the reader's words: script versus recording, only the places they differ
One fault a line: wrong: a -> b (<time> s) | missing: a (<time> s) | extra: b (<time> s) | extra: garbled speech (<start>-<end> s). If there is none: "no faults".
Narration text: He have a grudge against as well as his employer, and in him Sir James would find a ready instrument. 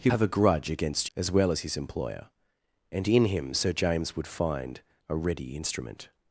no faults